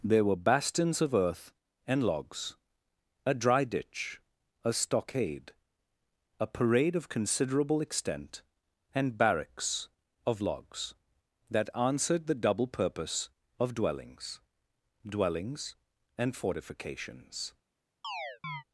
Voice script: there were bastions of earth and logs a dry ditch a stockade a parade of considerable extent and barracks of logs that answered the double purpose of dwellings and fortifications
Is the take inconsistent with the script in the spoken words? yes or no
yes